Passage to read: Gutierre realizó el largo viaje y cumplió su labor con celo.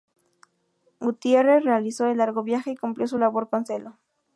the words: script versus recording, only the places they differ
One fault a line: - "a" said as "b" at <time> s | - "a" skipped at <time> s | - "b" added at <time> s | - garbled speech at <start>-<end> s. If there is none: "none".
none